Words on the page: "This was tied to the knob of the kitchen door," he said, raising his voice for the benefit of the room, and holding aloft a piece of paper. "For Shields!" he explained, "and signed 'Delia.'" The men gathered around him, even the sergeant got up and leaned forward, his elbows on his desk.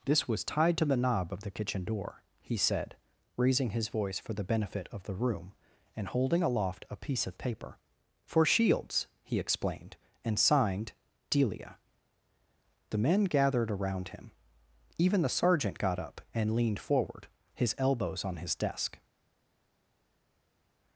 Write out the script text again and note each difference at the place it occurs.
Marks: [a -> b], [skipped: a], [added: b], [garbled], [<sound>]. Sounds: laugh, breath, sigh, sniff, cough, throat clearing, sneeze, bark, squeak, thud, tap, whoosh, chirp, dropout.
"This was tied to the knob of the kitchen door," he said, raising his voice for the benefit of the room, and holding aloft a piece of paper. "For Shields!" he explained, "and signed 'Delia.'" The men gathered around him, even the sergeant got up and leaned forward, his elbows on his desk.